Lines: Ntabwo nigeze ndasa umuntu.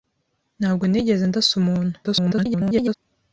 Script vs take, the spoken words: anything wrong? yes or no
yes